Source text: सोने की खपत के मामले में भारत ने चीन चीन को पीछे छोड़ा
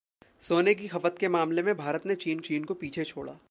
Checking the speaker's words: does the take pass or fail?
pass